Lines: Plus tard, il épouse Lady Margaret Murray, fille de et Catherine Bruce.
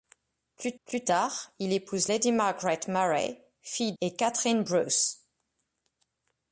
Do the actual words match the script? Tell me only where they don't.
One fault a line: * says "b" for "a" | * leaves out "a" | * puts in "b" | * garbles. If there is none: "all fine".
* puts in "plus"
* leaves out "de"